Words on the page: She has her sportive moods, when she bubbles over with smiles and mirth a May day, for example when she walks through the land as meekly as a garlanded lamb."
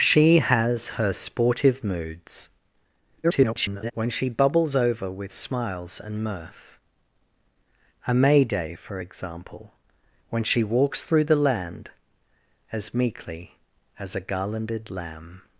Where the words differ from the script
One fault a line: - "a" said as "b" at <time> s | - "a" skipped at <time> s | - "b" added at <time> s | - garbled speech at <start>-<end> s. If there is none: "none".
- garbled speech at 3.2-3.9 s